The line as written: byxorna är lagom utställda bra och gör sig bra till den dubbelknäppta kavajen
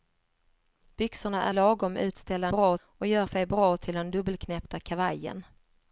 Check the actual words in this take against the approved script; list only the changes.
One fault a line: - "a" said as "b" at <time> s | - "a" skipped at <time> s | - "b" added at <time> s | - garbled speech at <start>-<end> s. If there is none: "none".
none